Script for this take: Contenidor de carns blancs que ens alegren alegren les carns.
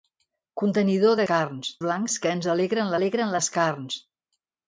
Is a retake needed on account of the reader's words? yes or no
no